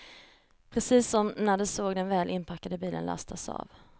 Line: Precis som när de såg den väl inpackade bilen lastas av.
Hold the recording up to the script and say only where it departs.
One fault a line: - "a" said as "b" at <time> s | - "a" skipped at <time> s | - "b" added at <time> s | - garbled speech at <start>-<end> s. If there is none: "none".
none